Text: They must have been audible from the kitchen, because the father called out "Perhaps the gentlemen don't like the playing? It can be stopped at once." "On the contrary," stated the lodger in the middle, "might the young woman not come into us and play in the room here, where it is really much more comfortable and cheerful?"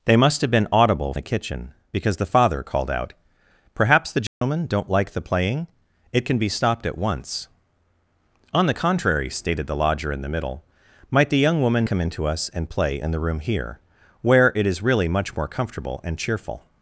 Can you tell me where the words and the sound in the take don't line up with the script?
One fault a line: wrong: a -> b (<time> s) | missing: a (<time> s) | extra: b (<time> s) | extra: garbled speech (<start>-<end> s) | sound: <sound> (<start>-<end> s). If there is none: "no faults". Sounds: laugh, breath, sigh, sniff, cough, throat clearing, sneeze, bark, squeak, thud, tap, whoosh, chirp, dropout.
missing: from (1.1 s)
sound: dropout (4.3-4.4 s)
missing: not (11.9 s)